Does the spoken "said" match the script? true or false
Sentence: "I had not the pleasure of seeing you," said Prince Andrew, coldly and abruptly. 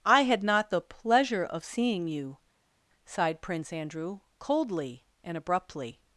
false